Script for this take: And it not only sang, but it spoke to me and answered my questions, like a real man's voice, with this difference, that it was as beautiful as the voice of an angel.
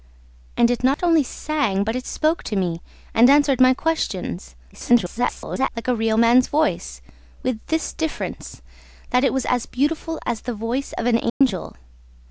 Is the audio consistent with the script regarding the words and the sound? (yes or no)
no